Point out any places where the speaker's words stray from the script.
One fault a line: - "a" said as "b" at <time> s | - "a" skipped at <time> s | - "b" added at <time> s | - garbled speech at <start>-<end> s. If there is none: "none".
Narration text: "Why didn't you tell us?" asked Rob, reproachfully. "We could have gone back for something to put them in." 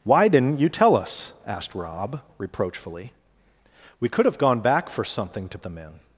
- "put" skipped at 5.6 s